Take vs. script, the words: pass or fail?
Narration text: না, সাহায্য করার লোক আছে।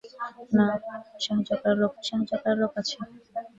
fail